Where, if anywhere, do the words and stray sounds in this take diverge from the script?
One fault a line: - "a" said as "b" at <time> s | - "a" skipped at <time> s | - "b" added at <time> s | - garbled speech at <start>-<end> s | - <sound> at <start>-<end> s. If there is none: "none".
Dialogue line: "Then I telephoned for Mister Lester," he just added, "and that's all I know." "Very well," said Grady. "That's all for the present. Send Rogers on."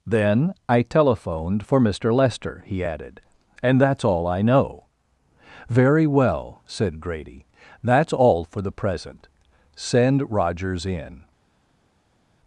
- "just" skipped at 2.8 s
- "on" said as "in" at 10.9 s